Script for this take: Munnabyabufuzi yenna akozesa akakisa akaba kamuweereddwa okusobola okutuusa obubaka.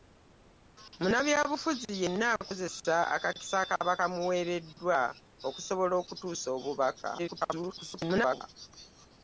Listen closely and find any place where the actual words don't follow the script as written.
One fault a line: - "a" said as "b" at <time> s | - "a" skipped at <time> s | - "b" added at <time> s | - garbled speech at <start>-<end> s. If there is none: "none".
- garbled speech at 7.2-8.4 s